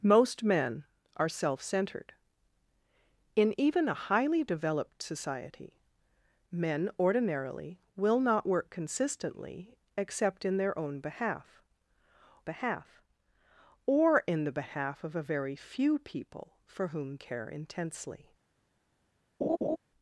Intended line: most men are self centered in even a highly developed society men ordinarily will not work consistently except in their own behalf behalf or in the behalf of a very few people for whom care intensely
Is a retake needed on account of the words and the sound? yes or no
yes